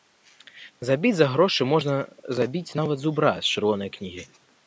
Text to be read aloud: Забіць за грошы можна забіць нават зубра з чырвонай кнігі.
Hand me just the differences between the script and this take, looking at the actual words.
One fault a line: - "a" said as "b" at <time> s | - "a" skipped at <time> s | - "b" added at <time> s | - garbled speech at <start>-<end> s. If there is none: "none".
none